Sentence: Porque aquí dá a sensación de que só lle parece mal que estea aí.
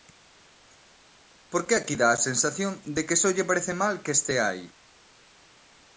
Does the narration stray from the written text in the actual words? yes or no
no